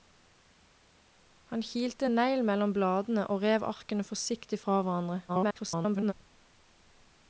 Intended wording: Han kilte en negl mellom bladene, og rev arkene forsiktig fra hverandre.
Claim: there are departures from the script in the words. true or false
true